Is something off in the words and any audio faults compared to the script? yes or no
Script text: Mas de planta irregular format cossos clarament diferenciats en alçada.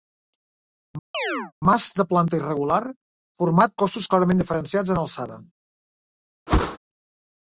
yes